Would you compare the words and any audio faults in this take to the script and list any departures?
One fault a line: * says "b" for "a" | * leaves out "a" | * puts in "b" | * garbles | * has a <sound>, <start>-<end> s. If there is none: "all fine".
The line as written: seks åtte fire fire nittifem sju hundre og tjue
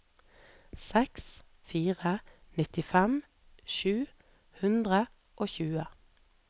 * leaves out "åtte fire"